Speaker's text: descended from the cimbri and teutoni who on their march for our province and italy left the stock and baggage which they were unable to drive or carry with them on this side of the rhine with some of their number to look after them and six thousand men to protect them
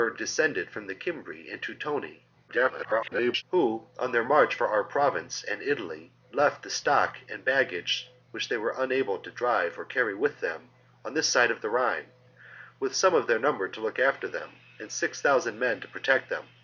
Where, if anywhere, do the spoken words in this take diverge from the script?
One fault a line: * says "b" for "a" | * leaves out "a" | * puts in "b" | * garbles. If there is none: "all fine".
* garbles